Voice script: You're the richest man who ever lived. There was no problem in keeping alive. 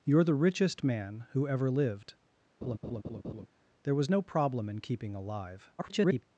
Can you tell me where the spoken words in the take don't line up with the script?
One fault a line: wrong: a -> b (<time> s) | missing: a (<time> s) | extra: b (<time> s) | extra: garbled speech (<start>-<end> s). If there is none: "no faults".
extra: garbled speech (5.8-6.2 s)